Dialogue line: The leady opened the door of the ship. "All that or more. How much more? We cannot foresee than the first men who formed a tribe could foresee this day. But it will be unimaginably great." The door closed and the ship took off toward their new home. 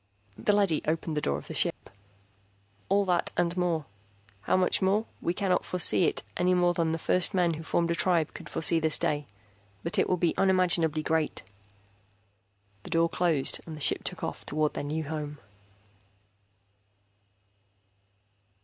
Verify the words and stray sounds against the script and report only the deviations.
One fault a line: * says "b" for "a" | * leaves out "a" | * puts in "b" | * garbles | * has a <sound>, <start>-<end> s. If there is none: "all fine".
* has a dropout, 1.7-1.8 s
* says "and" for "or"
* puts in "it any more"